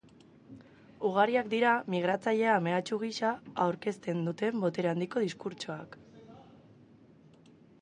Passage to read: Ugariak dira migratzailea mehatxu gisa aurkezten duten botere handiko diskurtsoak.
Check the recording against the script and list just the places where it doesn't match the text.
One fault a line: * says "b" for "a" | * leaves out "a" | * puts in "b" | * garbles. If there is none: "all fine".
all fine